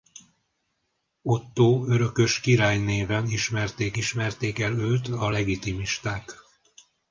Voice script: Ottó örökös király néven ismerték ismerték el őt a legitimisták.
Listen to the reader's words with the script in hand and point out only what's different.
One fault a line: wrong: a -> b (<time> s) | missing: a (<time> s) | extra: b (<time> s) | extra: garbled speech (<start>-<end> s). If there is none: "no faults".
no faults